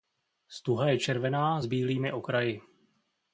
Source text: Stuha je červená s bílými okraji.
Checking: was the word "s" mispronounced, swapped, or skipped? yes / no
no